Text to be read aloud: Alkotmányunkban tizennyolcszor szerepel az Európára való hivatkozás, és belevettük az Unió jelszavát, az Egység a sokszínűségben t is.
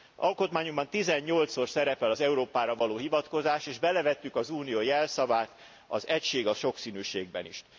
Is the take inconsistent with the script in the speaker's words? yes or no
no